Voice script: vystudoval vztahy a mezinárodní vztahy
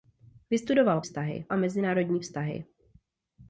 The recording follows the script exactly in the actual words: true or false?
true